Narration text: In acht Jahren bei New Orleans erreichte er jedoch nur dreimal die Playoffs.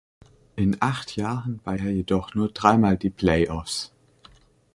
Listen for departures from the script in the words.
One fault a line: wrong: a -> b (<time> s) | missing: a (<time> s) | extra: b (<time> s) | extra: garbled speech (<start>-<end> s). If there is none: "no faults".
missing: New Orleans erreichte (1.8 s)